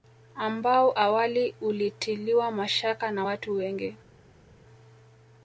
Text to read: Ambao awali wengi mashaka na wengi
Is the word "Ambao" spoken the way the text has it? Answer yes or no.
yes